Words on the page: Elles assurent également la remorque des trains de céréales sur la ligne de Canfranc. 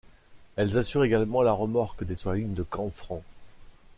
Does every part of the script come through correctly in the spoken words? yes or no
no